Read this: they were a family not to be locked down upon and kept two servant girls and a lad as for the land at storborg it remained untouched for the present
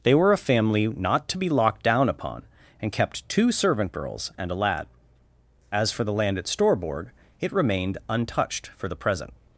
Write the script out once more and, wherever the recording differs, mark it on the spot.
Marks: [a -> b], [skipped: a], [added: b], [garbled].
they were a family not to be locked down upon and kept two servant girls and a lad as for the land at storborg it remained untouched for the present